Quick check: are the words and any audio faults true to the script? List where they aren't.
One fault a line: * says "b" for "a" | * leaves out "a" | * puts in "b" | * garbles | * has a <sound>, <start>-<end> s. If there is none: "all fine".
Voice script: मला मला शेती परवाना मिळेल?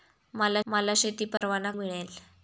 * has a dropout, 1.4-1.4 s